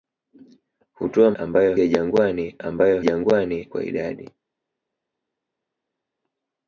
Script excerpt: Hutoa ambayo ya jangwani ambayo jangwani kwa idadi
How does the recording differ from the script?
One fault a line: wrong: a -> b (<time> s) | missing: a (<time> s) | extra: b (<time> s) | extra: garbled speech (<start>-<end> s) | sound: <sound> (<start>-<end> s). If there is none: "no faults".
no faults